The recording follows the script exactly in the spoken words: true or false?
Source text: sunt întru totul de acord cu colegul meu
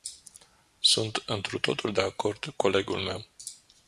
false